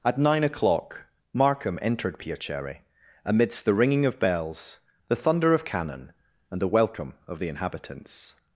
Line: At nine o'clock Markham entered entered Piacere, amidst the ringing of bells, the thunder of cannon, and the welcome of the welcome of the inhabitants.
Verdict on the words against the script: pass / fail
fail